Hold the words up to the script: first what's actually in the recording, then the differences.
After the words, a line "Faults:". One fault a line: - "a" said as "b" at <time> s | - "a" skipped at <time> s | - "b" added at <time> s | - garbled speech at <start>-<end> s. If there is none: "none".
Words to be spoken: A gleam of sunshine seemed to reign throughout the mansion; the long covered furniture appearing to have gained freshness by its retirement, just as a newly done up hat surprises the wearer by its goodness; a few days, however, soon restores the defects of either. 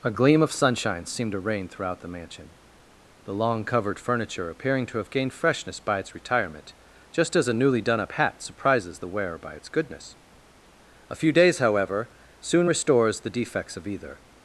A gleam of sunshine seemed to reign throughout the mansion; the long covered furniture appearing to have gained freshness by its retirement, just as a newly done up hat surprises the wearer by its goodness; a few days, however, soon restores the defects of either.
Faults:
none